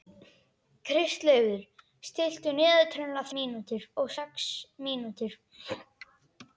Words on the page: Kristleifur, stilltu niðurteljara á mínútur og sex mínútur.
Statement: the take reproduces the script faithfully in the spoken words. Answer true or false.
true